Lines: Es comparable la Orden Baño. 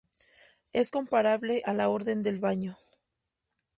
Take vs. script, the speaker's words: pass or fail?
fail